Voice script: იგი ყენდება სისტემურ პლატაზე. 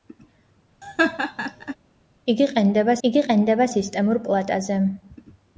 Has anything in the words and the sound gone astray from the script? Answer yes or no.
yes